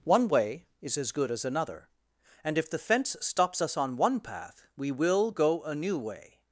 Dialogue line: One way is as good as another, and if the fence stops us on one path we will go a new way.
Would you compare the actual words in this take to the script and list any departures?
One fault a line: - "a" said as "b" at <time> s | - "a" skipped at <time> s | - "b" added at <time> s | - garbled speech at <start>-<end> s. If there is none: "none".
none